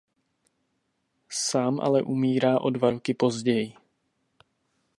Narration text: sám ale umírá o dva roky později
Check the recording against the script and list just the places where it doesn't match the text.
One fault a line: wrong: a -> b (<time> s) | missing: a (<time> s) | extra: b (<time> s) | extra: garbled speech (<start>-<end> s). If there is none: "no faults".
no faults